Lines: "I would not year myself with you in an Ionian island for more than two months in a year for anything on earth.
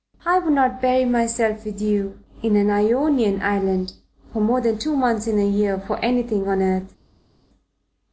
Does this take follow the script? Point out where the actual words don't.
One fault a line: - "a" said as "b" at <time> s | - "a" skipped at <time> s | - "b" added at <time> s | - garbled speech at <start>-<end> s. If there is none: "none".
- "year" said as "bury" at 0.8 s